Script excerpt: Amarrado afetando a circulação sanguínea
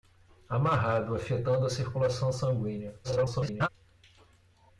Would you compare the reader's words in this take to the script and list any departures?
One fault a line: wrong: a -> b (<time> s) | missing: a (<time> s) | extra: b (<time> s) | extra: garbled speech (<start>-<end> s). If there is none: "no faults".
extra: garbled speech (3.0-3.7 s)